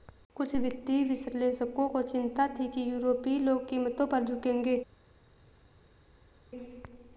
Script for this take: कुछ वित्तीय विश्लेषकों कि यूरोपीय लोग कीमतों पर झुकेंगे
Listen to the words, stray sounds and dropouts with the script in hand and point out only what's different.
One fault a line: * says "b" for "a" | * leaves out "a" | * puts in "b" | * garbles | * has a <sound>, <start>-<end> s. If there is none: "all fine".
* puts in "को चिंता थी"